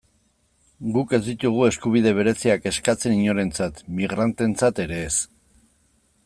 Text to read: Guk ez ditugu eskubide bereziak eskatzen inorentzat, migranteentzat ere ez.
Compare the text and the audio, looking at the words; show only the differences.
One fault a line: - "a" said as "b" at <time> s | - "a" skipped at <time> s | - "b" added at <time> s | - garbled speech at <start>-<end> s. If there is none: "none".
none